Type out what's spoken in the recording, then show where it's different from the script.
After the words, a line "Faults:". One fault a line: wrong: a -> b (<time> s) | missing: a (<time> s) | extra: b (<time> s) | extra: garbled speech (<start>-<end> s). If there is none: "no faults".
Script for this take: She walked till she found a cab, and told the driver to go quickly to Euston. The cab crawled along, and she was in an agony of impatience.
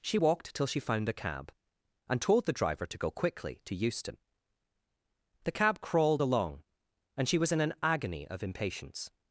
She walked till she found a cab, and told the driver to go quickly to Euston. The cab crawled along, and she was in an agony of impatience.
Faults:
no faults